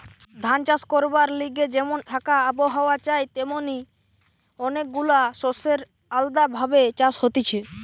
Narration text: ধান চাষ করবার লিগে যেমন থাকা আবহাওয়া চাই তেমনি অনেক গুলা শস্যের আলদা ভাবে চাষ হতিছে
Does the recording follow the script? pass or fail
pass